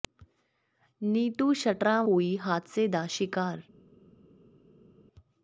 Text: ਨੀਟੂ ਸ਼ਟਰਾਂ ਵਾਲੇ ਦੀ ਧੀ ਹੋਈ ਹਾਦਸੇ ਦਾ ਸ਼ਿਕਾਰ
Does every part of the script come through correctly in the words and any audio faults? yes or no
no